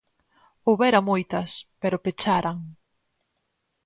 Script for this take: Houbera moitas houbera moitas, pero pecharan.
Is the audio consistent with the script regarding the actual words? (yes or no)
no